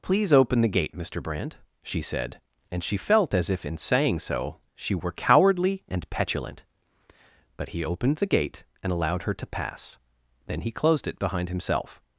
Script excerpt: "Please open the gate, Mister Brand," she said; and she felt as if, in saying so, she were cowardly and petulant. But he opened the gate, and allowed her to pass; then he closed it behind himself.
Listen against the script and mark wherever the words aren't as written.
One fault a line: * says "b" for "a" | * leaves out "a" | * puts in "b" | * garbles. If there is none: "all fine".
all fine